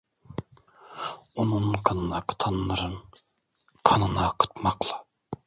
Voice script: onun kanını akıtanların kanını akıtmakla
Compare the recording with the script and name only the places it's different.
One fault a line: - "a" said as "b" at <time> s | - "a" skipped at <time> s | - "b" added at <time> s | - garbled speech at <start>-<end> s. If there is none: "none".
none